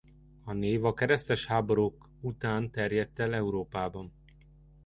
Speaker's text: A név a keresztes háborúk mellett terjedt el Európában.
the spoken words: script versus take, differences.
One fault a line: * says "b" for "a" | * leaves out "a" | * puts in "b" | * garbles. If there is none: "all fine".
* says "után" for "mellett"